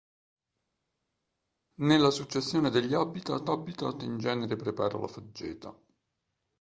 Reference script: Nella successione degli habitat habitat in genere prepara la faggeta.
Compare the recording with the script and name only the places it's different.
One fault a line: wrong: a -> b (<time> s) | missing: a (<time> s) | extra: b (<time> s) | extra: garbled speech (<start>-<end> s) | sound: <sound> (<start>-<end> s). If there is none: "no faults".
no faults